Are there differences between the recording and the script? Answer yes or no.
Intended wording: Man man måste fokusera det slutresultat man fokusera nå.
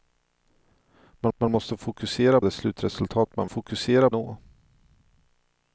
no